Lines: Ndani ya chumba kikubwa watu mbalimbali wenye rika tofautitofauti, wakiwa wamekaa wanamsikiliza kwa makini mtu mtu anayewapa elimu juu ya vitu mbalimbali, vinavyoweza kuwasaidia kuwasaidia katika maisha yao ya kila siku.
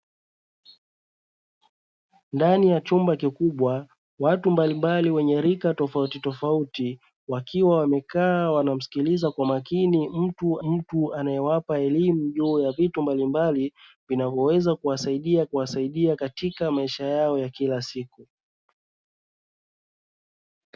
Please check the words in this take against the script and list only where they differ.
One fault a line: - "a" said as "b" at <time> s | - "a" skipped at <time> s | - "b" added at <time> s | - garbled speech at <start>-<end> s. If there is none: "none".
none